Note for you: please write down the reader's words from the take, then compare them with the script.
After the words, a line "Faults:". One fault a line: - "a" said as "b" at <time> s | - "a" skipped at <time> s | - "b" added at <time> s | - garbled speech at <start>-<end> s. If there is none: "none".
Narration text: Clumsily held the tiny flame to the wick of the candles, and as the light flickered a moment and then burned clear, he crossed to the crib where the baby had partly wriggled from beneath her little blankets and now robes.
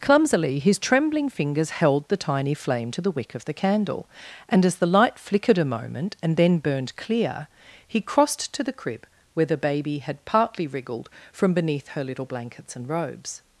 Clumsily his trembling fingers held the tiny flame to the wick of the candle, and as the light flickered a moment and then burned clear, he crossed to the crib where the baby had partly wriggled from beneath her little blankets and robes.
Faults:
- "his trembling fingers" added at 0.6 s
- "candles" said as "candle" at 3.5 s
- "now" skipped at 12.9 s